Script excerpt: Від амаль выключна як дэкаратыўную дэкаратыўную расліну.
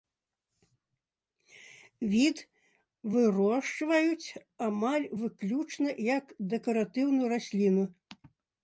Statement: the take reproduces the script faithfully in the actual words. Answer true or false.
false